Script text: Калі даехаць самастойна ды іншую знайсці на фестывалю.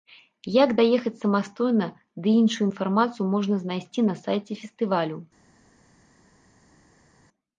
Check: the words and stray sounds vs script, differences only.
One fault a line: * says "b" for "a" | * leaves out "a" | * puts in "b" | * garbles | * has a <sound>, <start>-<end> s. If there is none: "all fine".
* says "Як" for "Калі"
* puts in "інфармацыю можна"
* puts in "сайце"